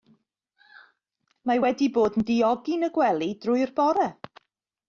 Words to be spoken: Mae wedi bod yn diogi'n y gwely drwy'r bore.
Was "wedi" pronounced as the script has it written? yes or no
yes